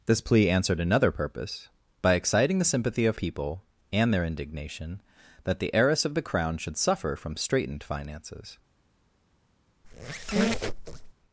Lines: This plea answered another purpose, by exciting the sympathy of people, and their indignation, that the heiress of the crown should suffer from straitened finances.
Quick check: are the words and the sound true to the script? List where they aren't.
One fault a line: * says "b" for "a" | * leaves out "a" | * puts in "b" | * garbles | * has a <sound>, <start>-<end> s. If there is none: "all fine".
* has a squeak, 9.8-11.1 s